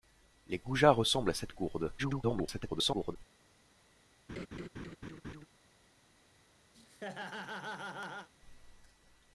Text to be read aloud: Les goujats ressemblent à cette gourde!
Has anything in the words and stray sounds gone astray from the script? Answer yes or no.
yes